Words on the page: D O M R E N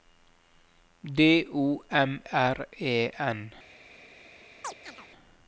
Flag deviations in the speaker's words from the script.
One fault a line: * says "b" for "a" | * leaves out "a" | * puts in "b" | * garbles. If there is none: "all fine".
all fine